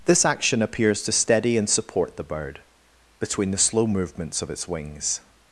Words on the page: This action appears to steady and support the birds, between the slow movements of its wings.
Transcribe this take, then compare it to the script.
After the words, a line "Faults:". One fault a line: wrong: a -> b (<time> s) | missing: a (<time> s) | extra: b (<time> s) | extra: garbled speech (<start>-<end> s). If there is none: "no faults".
This action appears to steady and support the bird, between the slow movements of its wings.
Faults:
wrong: birds -> bird (2.2 s)